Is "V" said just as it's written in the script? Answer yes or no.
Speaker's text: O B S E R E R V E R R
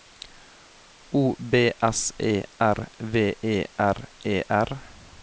no